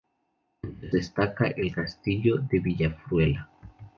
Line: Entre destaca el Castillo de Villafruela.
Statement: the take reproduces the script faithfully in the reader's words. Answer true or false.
true